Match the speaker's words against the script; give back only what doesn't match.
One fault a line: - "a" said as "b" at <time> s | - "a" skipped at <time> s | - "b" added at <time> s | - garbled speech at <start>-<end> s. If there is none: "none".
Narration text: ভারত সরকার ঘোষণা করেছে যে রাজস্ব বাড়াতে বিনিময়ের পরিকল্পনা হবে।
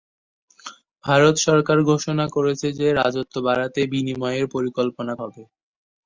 none